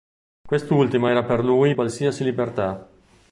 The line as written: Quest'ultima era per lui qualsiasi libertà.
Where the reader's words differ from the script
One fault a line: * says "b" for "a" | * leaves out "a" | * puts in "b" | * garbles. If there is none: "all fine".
all fine